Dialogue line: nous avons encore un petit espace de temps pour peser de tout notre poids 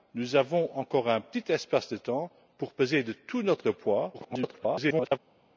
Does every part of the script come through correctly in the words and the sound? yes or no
no